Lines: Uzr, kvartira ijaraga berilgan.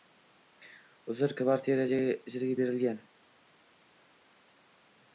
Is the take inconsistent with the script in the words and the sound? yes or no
no